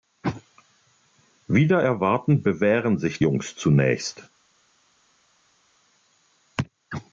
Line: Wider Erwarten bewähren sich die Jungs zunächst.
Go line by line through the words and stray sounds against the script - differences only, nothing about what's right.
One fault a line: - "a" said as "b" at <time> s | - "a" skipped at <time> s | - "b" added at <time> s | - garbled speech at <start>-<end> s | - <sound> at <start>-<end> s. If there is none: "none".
- "die" skipped at 3.2 s